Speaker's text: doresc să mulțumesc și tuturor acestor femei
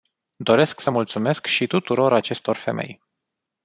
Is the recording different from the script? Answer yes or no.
no